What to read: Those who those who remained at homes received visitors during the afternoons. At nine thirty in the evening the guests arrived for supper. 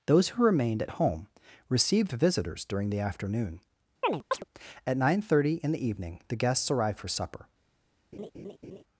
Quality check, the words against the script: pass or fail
fail